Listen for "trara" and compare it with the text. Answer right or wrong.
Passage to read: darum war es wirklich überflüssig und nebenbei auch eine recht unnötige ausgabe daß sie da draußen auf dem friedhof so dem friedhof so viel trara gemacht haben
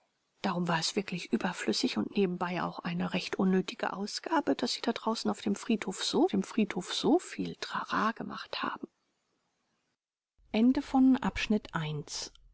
right